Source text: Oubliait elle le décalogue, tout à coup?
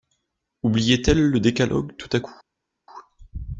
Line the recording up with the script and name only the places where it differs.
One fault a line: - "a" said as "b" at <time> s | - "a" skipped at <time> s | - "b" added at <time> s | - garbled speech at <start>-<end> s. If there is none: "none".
none